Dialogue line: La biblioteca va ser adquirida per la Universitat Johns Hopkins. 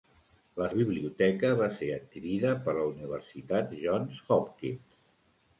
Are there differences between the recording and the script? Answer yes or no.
no